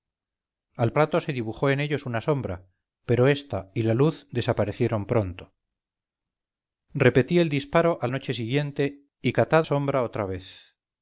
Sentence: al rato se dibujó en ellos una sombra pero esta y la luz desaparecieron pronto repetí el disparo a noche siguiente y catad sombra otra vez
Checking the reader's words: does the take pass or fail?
pass